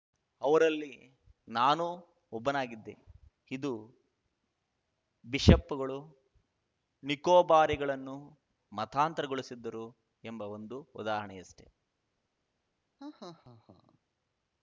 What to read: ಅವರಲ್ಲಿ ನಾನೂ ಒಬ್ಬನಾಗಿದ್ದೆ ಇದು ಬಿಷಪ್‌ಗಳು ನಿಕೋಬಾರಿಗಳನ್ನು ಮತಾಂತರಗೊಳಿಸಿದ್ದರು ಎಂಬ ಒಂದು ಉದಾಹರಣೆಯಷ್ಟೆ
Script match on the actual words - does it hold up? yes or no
yes